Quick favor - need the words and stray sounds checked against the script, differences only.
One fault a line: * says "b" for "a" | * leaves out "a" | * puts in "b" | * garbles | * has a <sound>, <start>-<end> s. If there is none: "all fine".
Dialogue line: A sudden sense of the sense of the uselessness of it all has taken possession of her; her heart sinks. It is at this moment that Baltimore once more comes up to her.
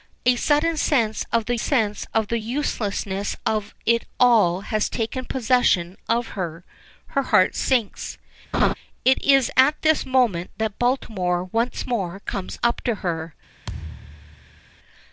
* has a laugh, 8.5-8.7 s
* has a thud, 13.6-14.6 s